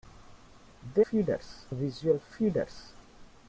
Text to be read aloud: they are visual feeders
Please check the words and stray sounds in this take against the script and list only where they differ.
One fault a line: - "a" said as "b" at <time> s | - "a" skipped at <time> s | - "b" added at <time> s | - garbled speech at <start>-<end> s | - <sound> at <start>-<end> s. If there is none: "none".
- "are" said as "feeders" at 1.1 s